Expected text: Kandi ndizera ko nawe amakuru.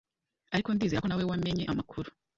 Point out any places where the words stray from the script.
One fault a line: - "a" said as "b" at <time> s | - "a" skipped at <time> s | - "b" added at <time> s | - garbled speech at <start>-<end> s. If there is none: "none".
- "Kandi" said as "Ariko" at 0.5 s
- "wamenye" added at 1.3 s